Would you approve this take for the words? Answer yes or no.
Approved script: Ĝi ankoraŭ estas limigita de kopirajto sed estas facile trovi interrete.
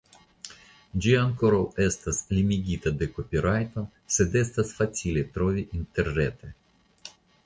yes